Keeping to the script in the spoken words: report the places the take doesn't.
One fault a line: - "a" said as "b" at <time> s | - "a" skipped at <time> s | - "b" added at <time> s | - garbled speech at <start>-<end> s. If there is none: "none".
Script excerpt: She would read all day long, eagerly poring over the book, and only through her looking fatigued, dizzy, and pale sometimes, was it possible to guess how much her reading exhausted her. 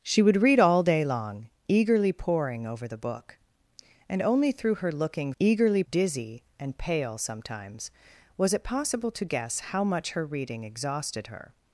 - "fatigued" said as "eagerly" at 5.4 s